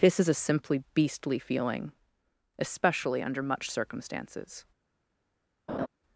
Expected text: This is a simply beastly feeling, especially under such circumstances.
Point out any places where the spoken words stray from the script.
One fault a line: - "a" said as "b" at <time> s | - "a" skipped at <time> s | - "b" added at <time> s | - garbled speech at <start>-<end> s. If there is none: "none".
- "such" said as "much" at 3.4 s